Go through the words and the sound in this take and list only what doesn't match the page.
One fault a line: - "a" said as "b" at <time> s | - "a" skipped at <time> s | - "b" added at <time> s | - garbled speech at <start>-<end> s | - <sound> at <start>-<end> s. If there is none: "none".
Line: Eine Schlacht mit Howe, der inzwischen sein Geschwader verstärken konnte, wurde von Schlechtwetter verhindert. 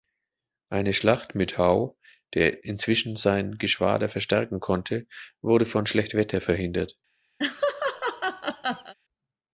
- laugh at 7.4-8.9 s